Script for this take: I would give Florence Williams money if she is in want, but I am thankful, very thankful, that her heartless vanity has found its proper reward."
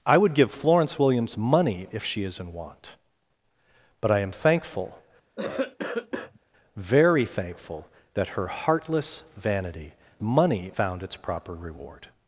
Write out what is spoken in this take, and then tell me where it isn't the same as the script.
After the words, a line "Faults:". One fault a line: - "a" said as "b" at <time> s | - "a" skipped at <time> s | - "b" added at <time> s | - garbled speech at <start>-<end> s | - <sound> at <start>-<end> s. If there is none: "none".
I would give Florence Williams money if she is in want, but I am thankful, very thankful, that her heartless vanity money found its proper reward."
Faults:
- cough at 5.4-6.4 s
- "has" said as "money" at 10.2 s